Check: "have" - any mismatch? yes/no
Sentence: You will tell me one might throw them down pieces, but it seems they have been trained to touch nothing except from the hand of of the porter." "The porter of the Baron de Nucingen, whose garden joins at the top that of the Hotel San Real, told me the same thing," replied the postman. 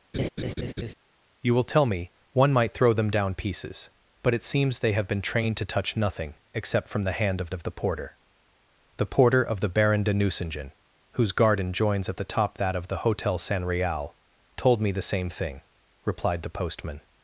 no